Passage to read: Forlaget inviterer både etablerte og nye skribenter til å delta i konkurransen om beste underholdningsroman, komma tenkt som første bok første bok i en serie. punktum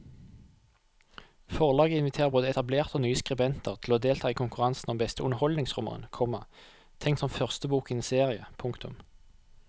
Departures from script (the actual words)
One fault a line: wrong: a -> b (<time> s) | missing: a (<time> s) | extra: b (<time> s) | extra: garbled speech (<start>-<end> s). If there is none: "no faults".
missing: første bok (7.9 s)